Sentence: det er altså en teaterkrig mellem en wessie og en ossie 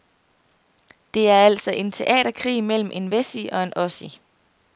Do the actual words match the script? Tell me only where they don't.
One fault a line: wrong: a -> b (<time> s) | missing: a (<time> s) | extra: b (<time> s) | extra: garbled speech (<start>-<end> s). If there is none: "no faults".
no faults